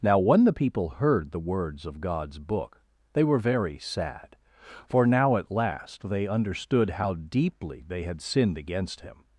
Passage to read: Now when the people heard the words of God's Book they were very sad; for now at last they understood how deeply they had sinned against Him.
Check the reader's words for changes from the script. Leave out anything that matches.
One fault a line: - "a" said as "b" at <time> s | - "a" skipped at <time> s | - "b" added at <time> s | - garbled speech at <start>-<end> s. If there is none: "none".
none